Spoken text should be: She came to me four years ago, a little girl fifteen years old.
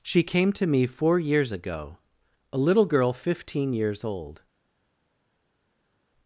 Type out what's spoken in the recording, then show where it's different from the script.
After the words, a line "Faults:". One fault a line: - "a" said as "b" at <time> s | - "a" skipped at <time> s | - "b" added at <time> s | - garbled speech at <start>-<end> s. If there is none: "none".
She came to me four years ago, a little girl fifteen years old.
Faults:
none